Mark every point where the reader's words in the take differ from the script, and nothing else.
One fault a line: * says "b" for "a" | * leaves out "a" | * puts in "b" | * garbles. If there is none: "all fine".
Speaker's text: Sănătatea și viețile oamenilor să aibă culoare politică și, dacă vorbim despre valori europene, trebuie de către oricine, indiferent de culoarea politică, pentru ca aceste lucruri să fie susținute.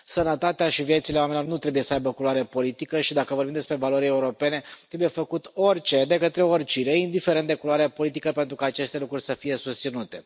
* puts in "nu trebuie"
* puts in "făcut orice"